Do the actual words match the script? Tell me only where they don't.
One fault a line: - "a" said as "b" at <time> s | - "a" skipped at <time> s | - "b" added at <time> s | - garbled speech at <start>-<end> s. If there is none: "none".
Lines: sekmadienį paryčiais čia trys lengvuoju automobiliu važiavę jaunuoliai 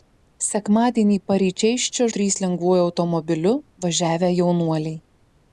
none